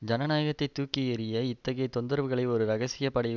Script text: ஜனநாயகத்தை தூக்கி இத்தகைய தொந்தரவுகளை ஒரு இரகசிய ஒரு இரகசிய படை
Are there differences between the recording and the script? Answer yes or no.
yes